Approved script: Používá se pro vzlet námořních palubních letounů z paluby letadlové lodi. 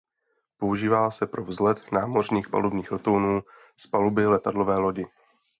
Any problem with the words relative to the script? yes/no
no